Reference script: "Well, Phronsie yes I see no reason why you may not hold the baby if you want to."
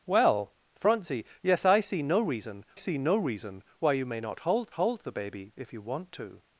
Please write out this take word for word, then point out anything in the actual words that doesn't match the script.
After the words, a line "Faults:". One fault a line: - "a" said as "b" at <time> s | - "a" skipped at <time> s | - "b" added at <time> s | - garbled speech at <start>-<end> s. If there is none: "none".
"Well, Phronsie yes I see no reason see no reason why you may not hold hold the baby if you want to."
Faults:
- "see no reason" added at 2.7 s
- "hold" added at 4.7 s